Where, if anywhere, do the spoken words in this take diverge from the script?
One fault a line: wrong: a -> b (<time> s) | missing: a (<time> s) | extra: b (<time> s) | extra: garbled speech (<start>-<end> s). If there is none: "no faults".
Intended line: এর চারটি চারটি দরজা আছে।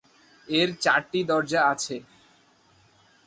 missing: চারটি (1.2 s)